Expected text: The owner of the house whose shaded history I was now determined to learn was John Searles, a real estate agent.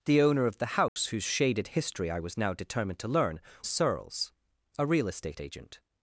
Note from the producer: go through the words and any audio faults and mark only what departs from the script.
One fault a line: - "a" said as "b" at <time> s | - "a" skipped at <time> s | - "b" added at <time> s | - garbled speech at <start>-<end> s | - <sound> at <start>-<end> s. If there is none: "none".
- dropout at 0.9-1.0 s
- "was John" skipped at 3.4 s